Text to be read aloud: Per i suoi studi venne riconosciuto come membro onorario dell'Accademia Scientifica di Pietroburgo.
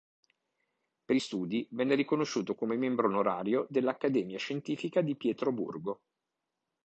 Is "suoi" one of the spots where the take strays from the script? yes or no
yes